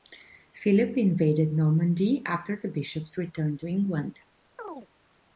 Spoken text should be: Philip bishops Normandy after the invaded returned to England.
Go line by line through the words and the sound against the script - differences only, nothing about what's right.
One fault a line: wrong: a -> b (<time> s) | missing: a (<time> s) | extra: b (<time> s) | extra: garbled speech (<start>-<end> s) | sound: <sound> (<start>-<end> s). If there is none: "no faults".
wrong: bishops -> invaded (1.0 s)
wrong: invaded -> bishops (2.7 s)
sound: chirp (4.6-4.9 s)